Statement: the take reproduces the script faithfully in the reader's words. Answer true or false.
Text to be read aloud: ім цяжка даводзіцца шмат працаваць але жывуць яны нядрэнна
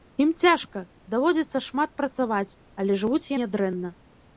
false